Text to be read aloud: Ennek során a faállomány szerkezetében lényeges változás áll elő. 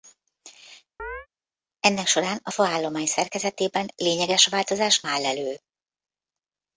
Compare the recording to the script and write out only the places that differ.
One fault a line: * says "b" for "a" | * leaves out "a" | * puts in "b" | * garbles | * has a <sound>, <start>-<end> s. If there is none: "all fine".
* has a chirp, 1.0-1.3 s